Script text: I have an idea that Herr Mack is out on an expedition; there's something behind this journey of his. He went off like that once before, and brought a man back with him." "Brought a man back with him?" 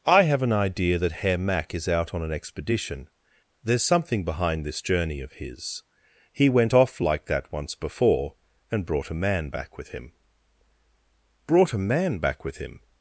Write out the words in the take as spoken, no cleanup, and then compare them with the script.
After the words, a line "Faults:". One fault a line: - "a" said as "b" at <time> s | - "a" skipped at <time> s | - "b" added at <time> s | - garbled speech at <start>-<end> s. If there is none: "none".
I have an idea that Herr Mack is out on an expedition; there's something behind this journey of his. He went off like that once before, and brought a man back with him." "Brought a man back with him?"
Faults:
none